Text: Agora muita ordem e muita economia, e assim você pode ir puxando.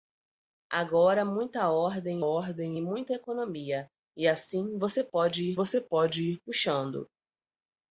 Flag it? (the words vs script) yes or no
yes